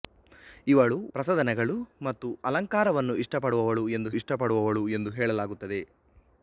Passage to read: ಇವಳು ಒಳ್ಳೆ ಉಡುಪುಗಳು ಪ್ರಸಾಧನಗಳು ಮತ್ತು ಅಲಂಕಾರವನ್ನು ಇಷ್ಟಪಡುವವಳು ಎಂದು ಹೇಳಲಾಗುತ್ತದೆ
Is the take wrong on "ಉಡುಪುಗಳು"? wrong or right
wrong